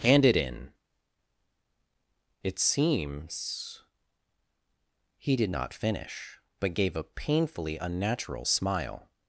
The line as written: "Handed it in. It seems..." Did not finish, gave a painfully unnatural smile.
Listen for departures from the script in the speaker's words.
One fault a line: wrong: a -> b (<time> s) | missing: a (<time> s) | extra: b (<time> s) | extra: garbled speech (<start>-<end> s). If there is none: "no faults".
wrong: Handed -> Hand (0.0 s)
extra: He (5.2 s)
extra: but (6.6 s)